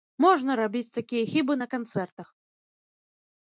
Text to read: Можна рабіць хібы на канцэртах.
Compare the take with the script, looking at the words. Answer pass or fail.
fail